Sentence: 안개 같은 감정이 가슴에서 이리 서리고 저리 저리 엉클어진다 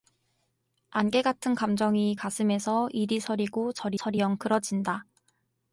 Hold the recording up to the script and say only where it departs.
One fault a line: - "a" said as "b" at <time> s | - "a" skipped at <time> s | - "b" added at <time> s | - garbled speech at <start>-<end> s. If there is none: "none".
none